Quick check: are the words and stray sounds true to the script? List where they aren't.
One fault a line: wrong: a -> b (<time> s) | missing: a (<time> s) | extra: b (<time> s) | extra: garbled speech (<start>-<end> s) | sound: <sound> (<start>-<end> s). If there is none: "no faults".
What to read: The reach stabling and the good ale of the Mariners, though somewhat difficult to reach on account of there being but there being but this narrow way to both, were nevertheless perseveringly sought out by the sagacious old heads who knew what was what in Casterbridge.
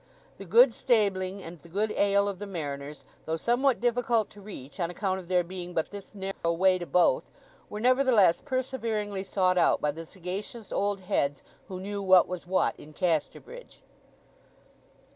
wrong: reach -> good (0.5 s)
missing: there being but (5.9 s)
sound: dropout (6.3-6.4 s)